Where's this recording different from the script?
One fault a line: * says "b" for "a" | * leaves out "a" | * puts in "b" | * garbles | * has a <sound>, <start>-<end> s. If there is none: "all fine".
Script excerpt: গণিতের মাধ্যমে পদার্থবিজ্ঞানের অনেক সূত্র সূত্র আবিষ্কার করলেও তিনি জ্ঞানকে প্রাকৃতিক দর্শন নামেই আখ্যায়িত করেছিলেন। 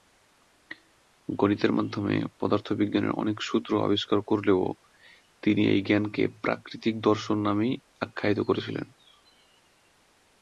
* leaves out "সূত্র"
* puts in "এই"